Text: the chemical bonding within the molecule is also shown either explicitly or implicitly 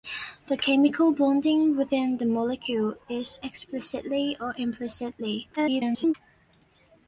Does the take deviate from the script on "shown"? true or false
true